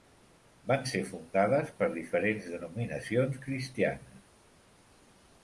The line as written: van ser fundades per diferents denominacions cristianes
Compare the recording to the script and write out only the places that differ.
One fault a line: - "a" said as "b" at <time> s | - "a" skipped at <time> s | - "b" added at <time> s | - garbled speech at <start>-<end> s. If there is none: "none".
none